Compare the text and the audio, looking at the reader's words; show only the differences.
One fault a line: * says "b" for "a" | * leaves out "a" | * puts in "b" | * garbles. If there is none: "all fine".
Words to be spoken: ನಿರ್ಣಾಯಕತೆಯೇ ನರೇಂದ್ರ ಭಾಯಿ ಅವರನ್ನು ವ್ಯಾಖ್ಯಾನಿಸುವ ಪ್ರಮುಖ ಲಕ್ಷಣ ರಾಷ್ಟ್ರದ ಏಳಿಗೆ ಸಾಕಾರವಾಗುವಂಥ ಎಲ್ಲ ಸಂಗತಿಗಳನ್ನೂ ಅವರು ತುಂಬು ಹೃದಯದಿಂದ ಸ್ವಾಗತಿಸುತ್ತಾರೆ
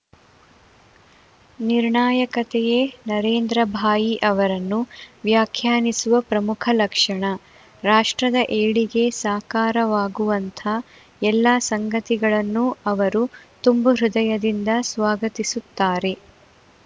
all fine